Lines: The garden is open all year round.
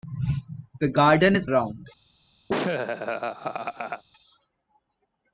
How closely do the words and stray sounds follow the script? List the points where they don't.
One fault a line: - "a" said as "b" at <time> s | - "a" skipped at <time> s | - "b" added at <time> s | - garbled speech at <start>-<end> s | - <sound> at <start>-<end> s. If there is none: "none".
- "open all year" skipped at 1.5 s
- laugh at 2.5-4.0 s